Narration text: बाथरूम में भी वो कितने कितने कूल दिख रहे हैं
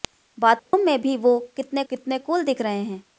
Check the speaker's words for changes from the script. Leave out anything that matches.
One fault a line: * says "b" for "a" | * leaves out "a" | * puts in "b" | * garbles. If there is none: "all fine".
all fine